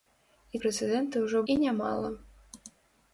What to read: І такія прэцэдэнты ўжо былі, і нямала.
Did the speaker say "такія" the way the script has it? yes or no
no